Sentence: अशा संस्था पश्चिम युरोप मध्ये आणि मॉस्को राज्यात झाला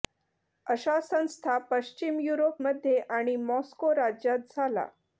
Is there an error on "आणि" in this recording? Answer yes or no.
no